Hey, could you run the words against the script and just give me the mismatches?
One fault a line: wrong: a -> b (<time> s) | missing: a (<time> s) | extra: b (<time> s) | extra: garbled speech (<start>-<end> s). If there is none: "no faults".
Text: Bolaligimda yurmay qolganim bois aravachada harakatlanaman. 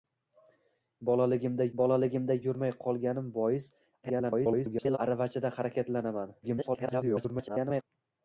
extra: bolaligimda (1.8 s)
extra: garbled speech (4.0-5.0 s)
extra: garbled speech (6.4-7.8 s)